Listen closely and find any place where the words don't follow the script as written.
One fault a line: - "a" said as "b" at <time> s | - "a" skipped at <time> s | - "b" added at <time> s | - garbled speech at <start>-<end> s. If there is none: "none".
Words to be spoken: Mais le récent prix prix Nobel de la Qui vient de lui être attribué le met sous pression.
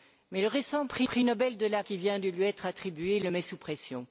none